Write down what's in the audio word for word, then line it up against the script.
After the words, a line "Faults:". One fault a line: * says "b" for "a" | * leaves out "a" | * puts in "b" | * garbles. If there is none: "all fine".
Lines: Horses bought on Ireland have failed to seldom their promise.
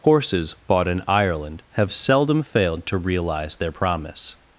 Horses bought in Ireland have seldom failed to realize their promise.
Faults:
* says "in" for "on"
* puts in "seldom"
* says "realize" for "seldom"